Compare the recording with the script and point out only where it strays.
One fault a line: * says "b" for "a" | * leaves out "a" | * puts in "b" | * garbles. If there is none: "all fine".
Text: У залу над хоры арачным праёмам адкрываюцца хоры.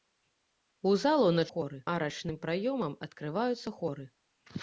all fine